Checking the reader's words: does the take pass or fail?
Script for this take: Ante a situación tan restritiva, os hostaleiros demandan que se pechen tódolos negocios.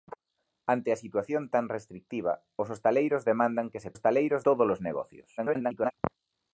fail